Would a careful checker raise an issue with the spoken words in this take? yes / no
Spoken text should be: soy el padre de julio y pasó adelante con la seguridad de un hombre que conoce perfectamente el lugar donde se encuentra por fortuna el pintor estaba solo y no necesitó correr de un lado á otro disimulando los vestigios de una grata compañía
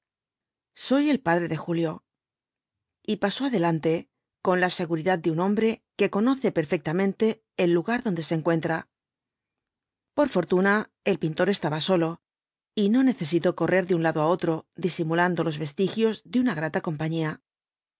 no